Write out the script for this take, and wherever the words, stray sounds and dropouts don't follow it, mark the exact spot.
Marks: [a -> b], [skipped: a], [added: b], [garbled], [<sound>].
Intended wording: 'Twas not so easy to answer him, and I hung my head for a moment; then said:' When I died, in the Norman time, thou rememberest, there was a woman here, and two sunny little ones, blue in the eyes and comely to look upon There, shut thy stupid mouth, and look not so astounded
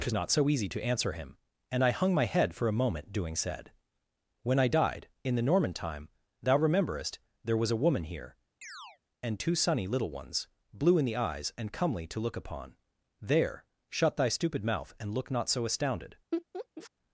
'Twas not so easy to answer him, and I hung my head for a moment; [then -> doing] said:' When I died, in the Norman time, thou rememberest, there was a woman here, [chirp] and two sunny little ones, blue in the eyes and comely to look upon There, shut thy stupid mouth, and look not so astounded [laugh]